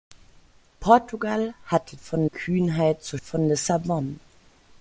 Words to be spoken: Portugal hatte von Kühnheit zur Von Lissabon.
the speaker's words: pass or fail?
pass